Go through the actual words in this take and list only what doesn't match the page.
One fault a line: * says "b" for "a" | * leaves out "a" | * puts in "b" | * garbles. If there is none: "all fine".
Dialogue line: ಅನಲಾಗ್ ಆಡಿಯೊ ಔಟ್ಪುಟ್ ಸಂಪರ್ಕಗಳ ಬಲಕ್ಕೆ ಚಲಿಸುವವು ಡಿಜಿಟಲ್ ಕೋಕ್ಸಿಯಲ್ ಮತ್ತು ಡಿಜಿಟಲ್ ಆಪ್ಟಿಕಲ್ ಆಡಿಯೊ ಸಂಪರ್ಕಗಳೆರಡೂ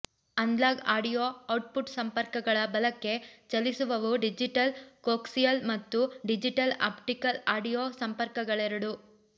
all fine